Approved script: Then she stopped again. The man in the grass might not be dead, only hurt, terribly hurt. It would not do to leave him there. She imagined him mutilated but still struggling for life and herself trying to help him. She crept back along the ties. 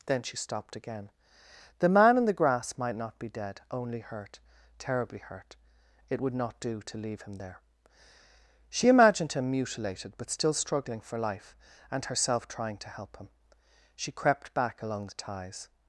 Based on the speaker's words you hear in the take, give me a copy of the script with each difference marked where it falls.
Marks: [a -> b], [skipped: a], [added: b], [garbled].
Then she stopped again. The man in the grass might not be dead, only hurt, terribly hurt. It would not do to leave him there. She imagined him mutilated but still struggling for life and herself trying to help him. She crept back along the ties.